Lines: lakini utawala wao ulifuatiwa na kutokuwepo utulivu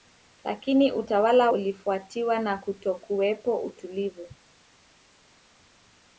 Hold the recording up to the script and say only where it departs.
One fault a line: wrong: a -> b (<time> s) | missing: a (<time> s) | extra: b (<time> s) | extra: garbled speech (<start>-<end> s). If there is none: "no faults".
missing: wao (1.5 s)